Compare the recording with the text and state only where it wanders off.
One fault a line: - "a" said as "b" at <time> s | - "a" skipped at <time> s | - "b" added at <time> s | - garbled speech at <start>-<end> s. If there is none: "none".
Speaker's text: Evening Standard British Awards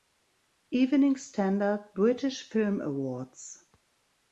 - "Film" added at 2.5 s